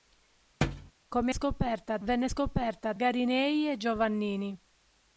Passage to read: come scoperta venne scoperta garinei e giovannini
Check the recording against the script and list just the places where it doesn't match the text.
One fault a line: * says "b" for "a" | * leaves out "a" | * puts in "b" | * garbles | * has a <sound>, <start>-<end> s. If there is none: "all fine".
* has a thud, 0.6-0.9 s